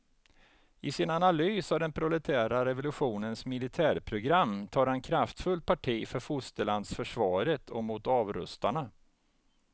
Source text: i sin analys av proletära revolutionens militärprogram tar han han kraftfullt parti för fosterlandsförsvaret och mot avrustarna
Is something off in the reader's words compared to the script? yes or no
yes